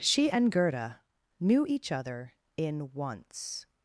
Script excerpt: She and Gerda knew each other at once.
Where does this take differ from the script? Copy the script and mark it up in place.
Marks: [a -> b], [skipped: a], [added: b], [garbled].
She and Gerda knew each other [at -> in] once.